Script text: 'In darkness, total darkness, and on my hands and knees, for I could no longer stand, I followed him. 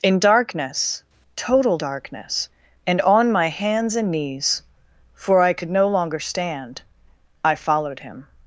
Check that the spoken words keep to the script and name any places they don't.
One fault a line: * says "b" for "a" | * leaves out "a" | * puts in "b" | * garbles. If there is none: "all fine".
all fine